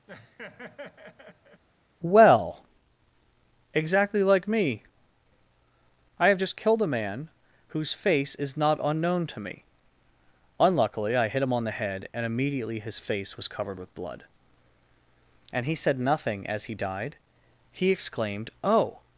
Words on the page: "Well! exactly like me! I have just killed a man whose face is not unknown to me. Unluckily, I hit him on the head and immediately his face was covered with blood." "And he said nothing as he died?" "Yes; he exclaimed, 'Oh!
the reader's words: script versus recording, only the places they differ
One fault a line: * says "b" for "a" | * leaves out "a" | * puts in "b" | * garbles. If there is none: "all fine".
* leaves out "Yes"